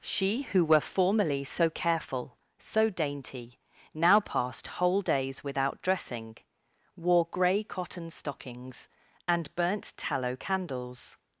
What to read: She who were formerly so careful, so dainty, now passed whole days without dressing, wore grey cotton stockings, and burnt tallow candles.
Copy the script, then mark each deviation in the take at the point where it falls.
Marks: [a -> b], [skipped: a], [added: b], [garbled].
She who were formerly so careful, so dainty, now passed whole days without dressing, wore grey cotton stockings, and burnt tallow candles.